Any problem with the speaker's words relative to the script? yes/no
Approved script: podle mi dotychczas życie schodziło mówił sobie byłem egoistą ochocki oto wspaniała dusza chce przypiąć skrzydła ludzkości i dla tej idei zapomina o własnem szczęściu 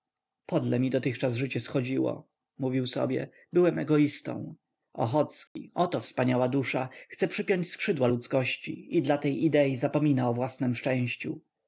no